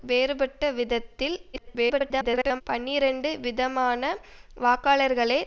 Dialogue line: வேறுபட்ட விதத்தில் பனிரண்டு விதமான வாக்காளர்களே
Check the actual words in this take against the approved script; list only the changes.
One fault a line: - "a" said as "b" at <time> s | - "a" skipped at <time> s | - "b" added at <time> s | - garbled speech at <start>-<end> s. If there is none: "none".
- garbled speech at 1.5-2.6 s